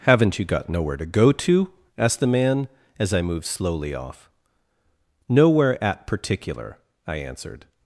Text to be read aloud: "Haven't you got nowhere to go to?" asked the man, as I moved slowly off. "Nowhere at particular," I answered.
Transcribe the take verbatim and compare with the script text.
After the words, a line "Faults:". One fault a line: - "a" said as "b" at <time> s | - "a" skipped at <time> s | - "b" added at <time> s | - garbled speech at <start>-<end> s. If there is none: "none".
"Haven't you got nowhere to go to?" asked the man, as I moved slowly off. "Nowhere at particular," I answered.
Faults:
none